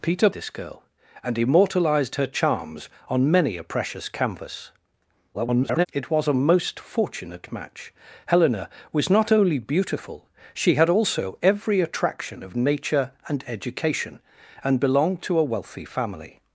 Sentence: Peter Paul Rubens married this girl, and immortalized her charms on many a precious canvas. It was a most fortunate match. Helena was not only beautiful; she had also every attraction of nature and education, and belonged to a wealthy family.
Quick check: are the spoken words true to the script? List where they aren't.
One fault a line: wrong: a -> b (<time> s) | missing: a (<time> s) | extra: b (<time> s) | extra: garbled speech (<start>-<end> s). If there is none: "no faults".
missing: Paul Rubens married (0.3 s)
extra: garbled speech (5.3-5.9 s)